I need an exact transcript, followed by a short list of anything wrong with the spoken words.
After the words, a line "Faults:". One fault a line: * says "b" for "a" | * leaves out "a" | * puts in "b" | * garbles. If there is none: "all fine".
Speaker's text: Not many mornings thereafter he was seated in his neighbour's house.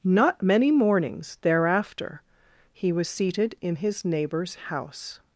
Not many mornings thereafter he was seated in his neighbour's house.
Faults:
all fine